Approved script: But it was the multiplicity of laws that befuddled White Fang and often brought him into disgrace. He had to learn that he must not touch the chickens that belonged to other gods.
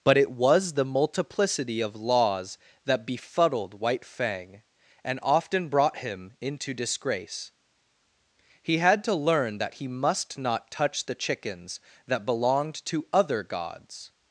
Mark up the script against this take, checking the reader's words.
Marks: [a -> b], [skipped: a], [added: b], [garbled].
But it was the multiplicity of laws that befuddled White Fang and often brought him into disgrace. He had to learn that he must not touch the chickens that belonged to other gods.